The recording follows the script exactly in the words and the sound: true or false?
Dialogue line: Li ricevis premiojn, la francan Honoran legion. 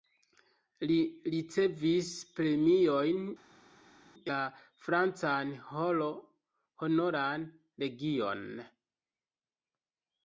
true